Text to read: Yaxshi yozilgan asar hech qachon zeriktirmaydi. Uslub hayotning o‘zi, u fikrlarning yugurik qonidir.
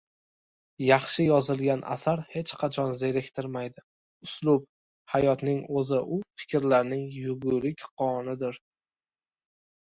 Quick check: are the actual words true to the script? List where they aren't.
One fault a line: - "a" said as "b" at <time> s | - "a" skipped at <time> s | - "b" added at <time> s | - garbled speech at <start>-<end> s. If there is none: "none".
none